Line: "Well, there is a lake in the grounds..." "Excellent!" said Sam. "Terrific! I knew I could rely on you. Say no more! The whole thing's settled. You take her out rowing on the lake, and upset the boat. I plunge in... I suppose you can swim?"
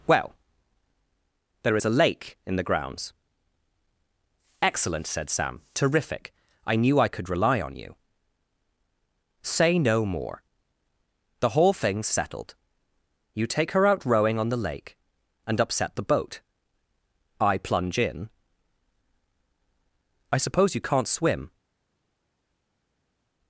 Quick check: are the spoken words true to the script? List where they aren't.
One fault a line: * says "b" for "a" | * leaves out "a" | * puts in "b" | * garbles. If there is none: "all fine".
* says "can't" for "can"